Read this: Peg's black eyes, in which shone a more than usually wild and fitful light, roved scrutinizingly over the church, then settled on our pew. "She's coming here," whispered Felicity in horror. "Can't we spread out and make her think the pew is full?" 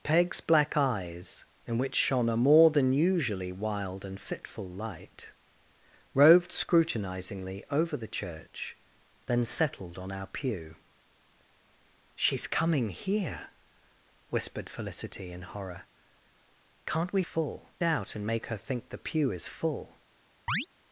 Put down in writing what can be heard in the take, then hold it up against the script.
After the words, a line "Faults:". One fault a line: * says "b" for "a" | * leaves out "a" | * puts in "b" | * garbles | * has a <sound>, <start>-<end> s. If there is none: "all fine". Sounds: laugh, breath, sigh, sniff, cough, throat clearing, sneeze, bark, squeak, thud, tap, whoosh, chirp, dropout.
Peg's black eyes, in which shone a more than usually wild and fitful light, roved scrutinizingly over the church, then settled on our pew. "She's coming here," whispered Felicity in horror. "Can't we full out and make her think the pew is full?"
Faults:
* says "full" for "spread"
* has a chirp, 20.5-20.7 s